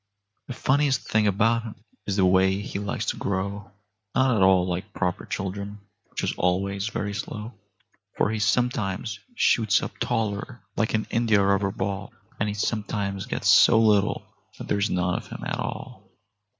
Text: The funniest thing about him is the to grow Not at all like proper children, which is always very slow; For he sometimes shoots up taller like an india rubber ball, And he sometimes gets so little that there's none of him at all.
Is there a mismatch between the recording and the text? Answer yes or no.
yes